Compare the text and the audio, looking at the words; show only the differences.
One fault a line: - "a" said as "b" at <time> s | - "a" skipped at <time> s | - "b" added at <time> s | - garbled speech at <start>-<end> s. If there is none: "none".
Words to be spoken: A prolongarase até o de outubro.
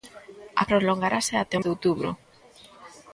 none